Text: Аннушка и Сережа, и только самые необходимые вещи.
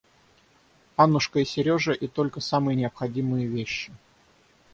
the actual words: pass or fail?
pass